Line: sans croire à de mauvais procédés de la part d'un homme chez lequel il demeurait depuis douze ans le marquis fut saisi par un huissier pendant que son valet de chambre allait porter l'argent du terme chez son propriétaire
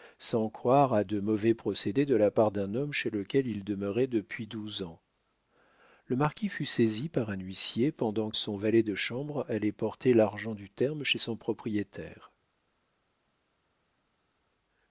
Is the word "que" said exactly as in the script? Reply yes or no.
no